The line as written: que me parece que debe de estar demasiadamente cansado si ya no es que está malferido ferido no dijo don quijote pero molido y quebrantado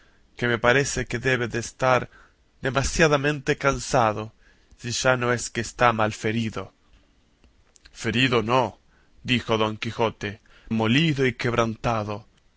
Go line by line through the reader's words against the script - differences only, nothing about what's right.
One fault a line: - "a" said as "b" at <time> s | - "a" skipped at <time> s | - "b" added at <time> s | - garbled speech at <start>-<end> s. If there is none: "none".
- "pero" skipped at 10.4 s